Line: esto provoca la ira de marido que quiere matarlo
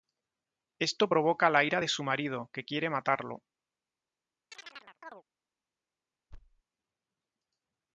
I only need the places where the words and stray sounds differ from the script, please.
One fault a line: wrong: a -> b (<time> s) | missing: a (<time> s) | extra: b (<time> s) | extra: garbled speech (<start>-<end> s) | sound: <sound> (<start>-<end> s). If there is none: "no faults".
extra: su (1.9 s)
sound: chirp (4.5-5.2 s)
sound: thud (6.3-6.6 s)